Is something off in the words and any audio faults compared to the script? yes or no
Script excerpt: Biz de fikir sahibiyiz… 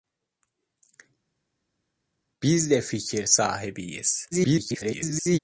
yes